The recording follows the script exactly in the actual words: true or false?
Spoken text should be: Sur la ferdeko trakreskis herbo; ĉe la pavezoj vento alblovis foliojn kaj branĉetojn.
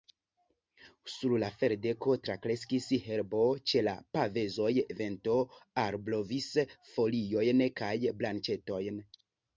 true